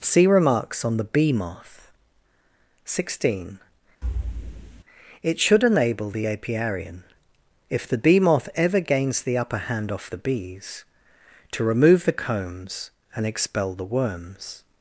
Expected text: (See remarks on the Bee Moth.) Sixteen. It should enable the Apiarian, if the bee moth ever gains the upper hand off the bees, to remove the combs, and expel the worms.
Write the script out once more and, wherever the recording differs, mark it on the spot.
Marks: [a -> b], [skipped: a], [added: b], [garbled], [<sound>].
(See remarks on the Bee Moth.) Sixteen. [thud] It should enable the Apiarian, if the bee moth ever gains the upper hand off the bees, to remove the combs, and expel the worms.